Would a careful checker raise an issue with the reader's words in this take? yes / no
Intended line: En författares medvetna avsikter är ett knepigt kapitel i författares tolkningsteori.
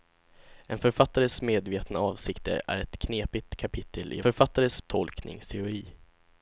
no